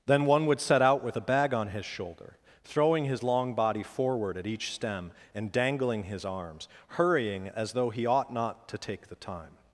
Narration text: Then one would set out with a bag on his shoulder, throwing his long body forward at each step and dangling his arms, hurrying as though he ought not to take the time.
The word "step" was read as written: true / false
false